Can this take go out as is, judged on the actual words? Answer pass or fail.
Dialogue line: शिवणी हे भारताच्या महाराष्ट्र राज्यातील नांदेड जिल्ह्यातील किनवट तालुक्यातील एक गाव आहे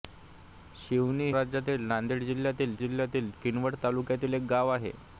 fail